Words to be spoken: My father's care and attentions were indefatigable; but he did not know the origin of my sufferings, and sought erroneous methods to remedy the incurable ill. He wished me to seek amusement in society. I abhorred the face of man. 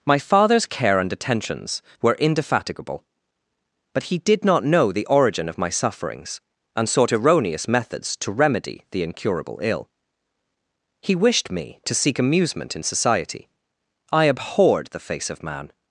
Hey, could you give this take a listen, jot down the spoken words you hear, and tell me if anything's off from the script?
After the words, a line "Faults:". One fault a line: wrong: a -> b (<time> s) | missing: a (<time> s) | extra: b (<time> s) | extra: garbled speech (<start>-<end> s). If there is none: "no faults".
My father's care and attentions were indefatigable; but he did not know the origin of my sufferings, and sought erroneous methods to remedy the incurable ill. He wished me to seek amusement in society. I abhorred the face of man.
Faults:
no faults